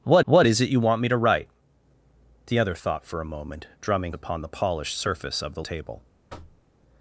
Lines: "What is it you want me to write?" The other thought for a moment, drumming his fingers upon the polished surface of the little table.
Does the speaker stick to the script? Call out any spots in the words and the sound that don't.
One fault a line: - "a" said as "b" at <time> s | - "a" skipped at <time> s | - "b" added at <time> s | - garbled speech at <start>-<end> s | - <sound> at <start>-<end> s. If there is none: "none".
- "what" added at 0.2 s
- "his fingers" skipped at 4.1 s
- "little" skipped at 5.6 s
- thud at 6.3-6.6 s